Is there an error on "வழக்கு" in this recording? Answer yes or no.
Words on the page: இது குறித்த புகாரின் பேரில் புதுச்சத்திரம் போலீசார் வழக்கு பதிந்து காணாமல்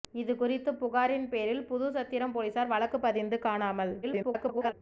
no